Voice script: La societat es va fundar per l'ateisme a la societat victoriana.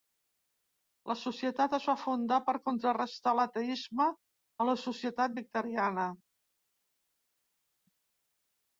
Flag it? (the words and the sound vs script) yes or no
yes